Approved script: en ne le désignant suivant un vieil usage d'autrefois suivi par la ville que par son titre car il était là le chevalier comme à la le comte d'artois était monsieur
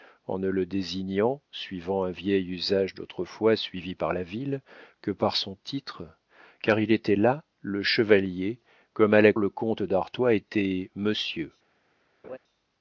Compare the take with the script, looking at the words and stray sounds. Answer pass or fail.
fail